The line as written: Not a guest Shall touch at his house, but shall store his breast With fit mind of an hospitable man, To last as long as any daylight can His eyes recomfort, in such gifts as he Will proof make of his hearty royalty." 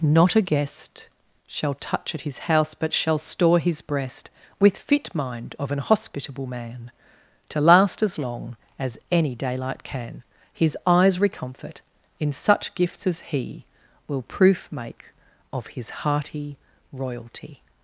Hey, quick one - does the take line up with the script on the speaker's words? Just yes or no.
yes